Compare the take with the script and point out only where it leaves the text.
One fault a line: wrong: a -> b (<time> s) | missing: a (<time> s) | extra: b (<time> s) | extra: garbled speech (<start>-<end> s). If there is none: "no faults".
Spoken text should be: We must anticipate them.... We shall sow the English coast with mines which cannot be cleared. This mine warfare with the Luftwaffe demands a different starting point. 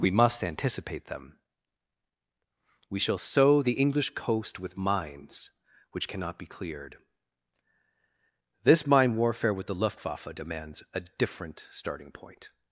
no faults